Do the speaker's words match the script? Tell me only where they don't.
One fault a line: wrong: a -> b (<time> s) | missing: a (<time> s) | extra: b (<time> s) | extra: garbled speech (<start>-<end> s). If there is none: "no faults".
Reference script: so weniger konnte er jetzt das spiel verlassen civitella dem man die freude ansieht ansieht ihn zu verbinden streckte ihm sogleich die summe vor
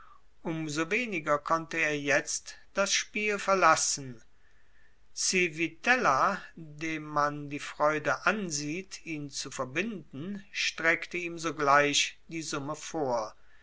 missing: ansieht (9.1 s)